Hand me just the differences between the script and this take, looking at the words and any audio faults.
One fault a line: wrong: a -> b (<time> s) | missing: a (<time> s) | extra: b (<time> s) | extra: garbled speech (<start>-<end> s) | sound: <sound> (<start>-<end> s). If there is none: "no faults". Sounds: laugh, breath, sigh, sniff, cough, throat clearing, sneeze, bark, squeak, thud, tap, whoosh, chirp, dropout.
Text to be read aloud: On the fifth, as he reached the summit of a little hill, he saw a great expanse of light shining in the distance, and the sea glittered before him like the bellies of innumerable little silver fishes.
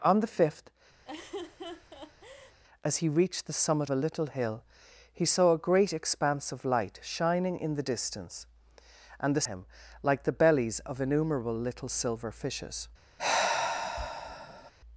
sound: laugh (1.0-2.6 s)
missing: of (3.9 s)
missing: sea glittered before (9.5 s)
sound: sigh (13.2-14.7 s)